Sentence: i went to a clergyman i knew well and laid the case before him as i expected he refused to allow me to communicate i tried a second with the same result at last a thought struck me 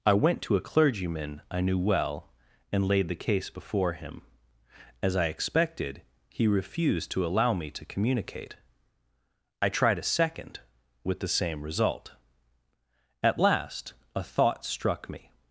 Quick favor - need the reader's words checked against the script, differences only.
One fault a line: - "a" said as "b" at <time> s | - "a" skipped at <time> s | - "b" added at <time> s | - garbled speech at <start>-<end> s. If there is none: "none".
none